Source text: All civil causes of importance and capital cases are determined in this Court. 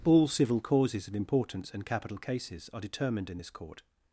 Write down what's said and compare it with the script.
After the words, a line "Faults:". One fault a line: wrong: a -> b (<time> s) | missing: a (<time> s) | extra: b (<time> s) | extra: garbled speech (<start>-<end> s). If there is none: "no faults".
All civil causes of importance and capital cases are determined in this Court.
Faults:
no faults